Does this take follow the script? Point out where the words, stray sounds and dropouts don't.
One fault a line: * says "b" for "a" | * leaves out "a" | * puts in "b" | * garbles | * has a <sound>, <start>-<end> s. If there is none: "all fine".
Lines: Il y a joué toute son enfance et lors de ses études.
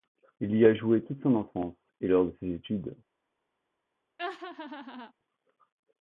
* has a laugh, 4.2-5.1 s